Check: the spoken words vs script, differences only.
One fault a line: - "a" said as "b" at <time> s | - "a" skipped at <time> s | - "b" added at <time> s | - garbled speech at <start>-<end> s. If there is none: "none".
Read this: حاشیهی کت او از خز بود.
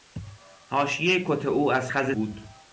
none